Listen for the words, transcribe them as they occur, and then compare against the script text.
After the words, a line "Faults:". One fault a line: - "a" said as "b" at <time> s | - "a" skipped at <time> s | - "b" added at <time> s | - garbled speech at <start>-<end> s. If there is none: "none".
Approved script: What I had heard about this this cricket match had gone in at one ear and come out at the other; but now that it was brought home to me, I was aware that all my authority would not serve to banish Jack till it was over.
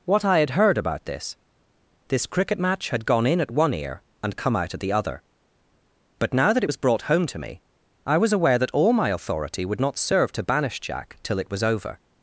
What I had heard about this this cricket match had gone in at one ear and come out at the other; but now that it was brought home to me, I was aware that all my authority would not serve to banish Jack till it was over.
Faults:
none